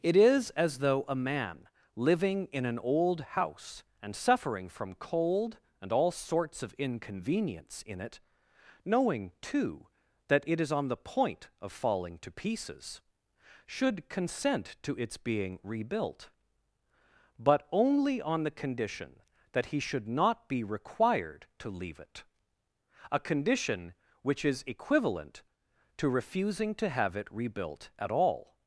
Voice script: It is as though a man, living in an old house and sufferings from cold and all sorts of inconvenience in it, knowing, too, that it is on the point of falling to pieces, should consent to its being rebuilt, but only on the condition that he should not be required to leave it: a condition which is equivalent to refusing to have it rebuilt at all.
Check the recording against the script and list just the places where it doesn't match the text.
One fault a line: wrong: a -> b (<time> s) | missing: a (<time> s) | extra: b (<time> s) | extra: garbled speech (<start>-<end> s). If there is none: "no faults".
wrong: sufferings -> suffering (4.2 s)